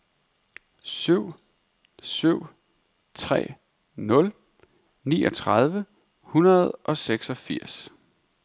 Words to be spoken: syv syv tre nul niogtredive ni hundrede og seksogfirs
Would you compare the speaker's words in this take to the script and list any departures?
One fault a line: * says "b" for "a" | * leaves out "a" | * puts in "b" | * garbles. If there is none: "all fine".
* leaves out "ni"